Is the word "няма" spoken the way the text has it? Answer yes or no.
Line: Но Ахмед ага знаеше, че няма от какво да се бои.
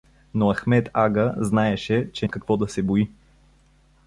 no